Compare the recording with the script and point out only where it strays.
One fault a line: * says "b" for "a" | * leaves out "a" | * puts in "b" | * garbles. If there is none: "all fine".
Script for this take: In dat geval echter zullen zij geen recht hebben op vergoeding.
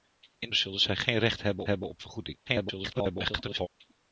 * leaves out "dat geval echter"
* puts in "hebben"
* garbles